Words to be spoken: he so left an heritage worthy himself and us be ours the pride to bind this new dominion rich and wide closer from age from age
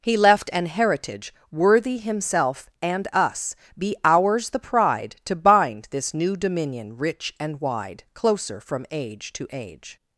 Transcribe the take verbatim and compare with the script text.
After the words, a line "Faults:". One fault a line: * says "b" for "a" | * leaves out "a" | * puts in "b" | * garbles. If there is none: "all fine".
he left an heritage worthy himself and us be ours the pride to bind this new dominion rich and wide closer from age to age
Faults:
* leaves out "so"
* says "to" for "from"